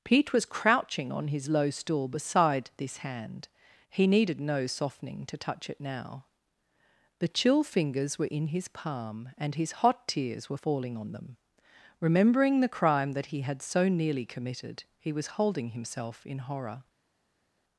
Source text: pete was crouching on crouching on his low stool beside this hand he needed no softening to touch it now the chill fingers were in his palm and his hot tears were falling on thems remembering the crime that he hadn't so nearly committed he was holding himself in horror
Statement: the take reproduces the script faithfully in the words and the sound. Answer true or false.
false